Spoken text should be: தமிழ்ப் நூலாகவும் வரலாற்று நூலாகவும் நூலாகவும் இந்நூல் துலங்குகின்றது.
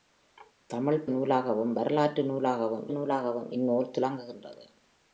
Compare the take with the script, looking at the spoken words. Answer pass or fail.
pass